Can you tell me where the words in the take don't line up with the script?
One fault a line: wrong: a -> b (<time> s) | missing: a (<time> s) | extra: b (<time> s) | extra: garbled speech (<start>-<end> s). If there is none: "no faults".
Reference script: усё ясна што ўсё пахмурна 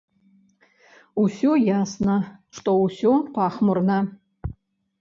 no faults